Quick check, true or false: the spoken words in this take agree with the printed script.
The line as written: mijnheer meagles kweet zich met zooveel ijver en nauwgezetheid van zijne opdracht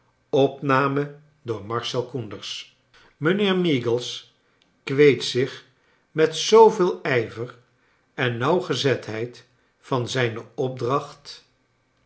true